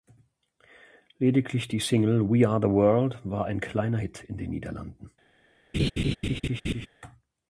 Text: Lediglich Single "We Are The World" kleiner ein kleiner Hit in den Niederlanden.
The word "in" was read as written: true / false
true